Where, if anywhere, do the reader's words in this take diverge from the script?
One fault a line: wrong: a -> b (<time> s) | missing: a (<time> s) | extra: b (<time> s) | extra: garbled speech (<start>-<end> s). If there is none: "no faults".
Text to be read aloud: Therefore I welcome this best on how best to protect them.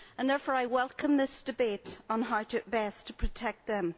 wrong: best -> debate (1.4 s)